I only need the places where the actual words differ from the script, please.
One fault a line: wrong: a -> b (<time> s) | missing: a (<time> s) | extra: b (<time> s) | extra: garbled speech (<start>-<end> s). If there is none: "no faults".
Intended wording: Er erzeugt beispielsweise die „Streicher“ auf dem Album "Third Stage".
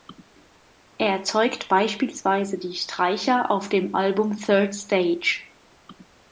no faults